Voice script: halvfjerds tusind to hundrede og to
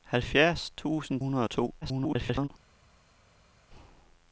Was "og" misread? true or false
false